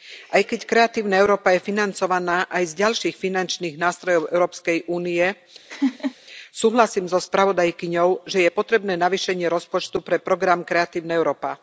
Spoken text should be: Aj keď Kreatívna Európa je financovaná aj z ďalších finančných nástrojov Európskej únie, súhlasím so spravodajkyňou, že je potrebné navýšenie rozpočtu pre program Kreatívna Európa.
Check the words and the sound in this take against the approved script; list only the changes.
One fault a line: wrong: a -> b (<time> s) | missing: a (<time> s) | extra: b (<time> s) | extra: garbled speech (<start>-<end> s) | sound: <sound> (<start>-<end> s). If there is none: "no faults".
sound: laugh (5.7-6.2 s)